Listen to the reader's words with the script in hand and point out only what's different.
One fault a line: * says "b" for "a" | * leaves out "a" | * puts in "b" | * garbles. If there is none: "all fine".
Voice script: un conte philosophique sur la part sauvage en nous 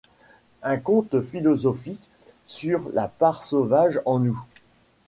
all fine